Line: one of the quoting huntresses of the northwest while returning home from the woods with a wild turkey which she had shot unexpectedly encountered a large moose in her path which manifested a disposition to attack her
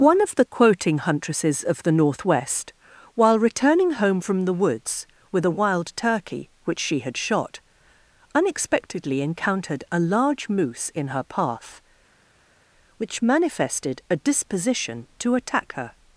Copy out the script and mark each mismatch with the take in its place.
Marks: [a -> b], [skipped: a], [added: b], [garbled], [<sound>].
one of the quoting huntresses of the northwest while returning home from the woods with a wild turkey which she had shot unexpectedly encountered a large moose in her path which manifested a disposition to attack her